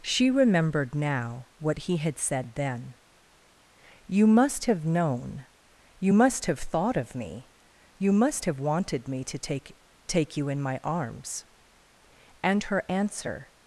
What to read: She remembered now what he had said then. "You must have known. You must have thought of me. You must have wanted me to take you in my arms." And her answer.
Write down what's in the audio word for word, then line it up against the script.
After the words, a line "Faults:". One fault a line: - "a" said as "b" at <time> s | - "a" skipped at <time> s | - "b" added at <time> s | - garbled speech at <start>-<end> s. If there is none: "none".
She remembered now what he had said then. "You must have known. You must have thought of me. You must have wanted me to take take you in my arms." And her answer.
Faults:
- "take" added at 10.1 s